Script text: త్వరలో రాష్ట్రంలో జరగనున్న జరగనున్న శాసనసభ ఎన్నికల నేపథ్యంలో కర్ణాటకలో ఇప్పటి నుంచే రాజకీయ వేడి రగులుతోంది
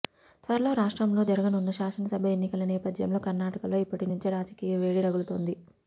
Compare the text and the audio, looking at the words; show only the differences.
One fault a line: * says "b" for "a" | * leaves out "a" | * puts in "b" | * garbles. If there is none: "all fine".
* leaves out "జరగనున్న"